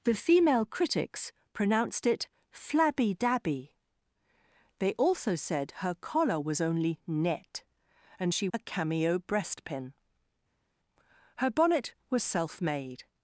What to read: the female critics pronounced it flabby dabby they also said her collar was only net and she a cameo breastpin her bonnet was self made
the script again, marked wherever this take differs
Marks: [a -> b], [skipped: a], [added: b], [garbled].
the female critics pronounced it flabby dabby they also said her collar was only net and she a cameo breastpin her bonnet was self made